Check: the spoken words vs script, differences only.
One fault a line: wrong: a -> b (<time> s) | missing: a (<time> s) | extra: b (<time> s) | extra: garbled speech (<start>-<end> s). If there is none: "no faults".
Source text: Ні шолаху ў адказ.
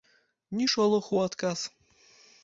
no faults